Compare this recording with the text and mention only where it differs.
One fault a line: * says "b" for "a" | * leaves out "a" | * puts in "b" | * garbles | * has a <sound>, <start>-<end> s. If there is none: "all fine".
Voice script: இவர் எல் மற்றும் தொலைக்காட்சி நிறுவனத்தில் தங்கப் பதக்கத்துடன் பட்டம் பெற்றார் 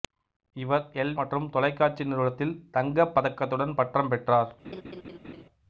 * has a laugh, 4.6-5.4 s